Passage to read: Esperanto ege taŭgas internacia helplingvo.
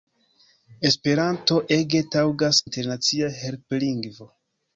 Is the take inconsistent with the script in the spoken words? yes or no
no